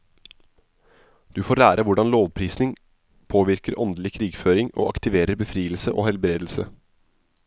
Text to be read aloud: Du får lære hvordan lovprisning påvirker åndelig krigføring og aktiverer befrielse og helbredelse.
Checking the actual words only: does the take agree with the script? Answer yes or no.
yes